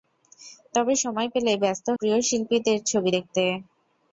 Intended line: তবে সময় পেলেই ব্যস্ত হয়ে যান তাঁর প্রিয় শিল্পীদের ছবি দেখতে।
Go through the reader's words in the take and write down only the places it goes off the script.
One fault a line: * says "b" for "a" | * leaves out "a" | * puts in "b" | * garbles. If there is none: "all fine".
* leaves out "হয়ে যান তাঁর"